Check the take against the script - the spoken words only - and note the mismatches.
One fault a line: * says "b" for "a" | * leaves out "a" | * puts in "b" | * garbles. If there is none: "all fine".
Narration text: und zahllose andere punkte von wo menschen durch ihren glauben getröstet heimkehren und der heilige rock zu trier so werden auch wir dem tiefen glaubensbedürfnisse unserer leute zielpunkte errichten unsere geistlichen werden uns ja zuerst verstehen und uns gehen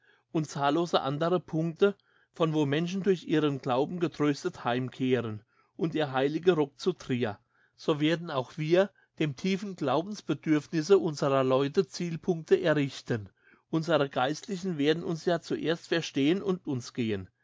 all fine